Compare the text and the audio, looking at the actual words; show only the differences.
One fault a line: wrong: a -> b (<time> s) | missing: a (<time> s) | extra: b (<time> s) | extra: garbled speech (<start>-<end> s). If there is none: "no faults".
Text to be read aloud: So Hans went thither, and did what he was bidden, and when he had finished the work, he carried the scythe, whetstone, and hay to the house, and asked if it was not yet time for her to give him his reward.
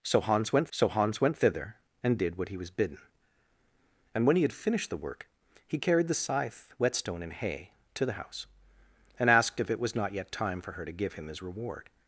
extra: so Hans went (0.7 s)